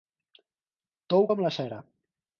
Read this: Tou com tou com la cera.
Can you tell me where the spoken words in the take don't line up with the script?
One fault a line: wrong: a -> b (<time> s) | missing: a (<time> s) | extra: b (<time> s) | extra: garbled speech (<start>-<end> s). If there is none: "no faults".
missing: tou com (1.4 s)